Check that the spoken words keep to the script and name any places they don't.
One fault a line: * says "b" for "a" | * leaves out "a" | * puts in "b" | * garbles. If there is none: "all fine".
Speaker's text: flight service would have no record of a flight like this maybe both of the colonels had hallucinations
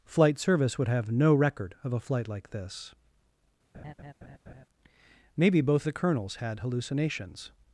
* leaves out "of"